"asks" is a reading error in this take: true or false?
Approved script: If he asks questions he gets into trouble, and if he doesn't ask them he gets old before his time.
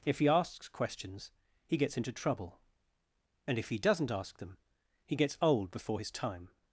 false